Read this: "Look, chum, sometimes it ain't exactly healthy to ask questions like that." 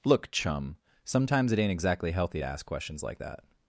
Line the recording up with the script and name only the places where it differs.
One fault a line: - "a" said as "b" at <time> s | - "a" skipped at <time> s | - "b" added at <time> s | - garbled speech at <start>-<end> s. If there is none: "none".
none